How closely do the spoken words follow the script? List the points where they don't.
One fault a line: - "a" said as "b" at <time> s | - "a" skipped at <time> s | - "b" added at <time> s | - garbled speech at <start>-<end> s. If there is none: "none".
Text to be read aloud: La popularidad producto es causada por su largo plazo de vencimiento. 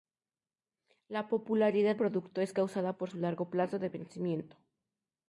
none